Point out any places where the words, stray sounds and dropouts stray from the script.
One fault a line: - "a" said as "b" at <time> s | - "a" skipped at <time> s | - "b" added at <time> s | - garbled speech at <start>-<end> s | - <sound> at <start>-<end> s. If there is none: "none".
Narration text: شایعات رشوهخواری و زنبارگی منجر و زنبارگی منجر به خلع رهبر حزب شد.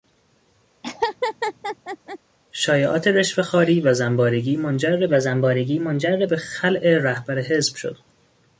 - laugh at 0.8-2.2 s